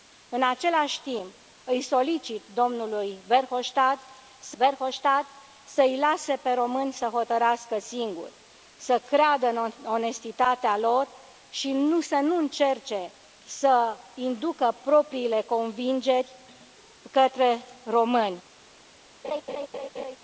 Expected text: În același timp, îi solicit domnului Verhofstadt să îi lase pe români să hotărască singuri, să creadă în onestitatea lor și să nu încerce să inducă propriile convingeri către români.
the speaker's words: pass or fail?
fail